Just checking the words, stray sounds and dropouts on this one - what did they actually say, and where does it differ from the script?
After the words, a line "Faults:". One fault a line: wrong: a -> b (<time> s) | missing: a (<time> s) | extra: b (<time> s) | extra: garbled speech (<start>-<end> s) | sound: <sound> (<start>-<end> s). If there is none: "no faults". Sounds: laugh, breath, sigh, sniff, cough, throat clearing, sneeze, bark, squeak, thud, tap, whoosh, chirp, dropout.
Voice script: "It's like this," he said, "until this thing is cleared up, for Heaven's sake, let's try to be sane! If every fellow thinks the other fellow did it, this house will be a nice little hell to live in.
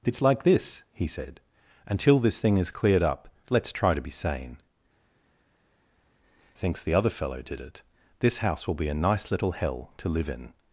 "It's like this," he said, "until this thing is cleared up, let's try to be sane! Thinks the other fellow did it, this house will be a nice little hell to live in.
Faults:
missing: for Heaven's sake (3.3 s)
missing: If every fellow (4.6 s)